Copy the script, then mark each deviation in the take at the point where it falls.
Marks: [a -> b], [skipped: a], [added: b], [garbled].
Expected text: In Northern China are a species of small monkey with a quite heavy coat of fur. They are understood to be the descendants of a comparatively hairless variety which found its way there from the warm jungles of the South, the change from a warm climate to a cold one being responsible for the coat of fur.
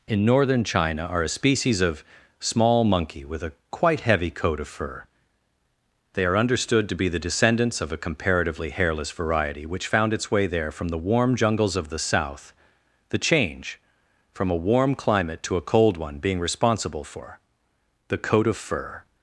In Northern China are a species of small monkey with a quite heavy coat of fur. They are understood to be the descendants of a comparatively hairless variety which found its way there from the warm jungles of the South, the change from a warm climate to a cold one being responsible for the coat of fur.